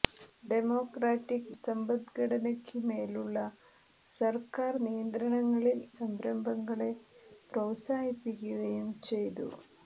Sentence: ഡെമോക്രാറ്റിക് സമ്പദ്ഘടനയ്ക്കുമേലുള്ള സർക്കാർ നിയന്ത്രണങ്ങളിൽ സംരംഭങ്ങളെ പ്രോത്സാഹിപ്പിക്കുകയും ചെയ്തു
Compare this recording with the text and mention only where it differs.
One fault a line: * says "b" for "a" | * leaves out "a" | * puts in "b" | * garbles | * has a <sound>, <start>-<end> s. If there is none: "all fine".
all fine